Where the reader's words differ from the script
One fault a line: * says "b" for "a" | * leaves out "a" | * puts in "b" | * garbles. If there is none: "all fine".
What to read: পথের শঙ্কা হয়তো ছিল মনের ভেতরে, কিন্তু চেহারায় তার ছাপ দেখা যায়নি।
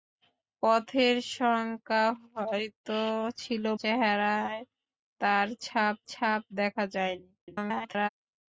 * leaves out "মনের ভেতরে কিন্তু"
* puts in "ছাপ"
* garbles